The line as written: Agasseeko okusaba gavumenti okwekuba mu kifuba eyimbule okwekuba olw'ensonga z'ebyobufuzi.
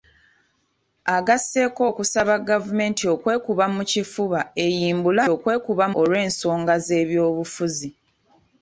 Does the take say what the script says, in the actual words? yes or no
yes